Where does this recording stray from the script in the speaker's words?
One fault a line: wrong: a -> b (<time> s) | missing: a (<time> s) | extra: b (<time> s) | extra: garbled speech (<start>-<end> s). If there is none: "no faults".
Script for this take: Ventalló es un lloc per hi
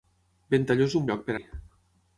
no faults